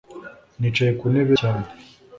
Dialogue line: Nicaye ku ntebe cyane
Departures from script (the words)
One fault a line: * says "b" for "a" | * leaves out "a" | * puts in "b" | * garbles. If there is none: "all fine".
all fine